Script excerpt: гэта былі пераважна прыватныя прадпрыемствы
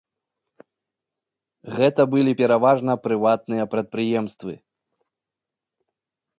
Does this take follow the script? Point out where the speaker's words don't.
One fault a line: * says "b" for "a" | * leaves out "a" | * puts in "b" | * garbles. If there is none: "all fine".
all fine